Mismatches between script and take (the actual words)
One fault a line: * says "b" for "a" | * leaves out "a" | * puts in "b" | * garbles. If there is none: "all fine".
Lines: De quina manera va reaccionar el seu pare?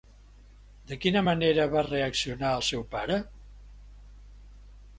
all fine